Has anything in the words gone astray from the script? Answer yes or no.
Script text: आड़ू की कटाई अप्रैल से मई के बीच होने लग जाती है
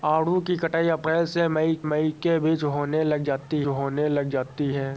yes